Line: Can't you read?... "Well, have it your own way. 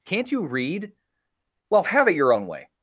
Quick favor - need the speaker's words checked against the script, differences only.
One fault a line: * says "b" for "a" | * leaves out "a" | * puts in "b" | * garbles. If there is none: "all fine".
all fine